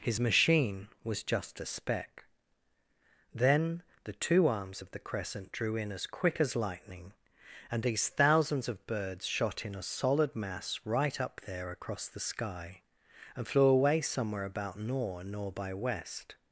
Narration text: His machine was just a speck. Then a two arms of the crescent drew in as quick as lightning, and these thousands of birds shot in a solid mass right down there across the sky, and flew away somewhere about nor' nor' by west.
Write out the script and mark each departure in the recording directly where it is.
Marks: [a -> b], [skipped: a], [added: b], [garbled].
His machine was just a speck. Then [a -> the] two arms of the crescent drew in as quick as lightning, and these thousands of birds shot in a solid mass right [down -> up] there across the sky, and flew away somewhere about nor' nor' by west.